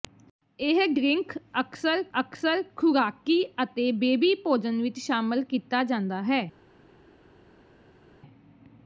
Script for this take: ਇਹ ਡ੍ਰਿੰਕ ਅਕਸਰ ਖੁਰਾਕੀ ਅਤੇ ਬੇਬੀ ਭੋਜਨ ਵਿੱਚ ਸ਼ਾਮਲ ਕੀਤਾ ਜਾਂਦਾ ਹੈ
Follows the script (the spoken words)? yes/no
no